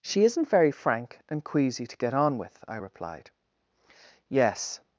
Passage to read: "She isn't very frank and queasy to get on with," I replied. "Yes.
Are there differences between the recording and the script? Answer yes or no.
no